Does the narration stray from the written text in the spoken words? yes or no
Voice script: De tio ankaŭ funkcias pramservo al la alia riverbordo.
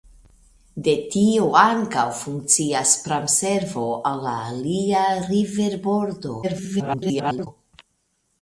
yes